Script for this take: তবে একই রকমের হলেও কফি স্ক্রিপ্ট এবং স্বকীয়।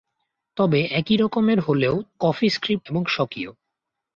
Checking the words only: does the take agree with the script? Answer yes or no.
yes